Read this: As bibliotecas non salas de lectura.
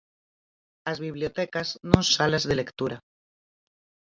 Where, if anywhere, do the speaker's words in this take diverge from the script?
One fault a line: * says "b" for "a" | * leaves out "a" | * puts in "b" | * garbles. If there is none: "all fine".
all fine